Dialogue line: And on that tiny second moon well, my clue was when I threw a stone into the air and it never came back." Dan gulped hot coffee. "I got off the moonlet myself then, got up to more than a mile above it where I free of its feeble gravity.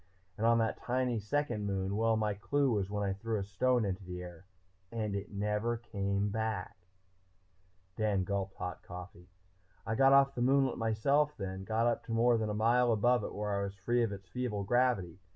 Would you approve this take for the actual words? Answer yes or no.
no